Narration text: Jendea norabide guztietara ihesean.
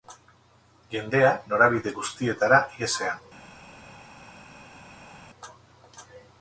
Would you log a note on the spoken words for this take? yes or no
no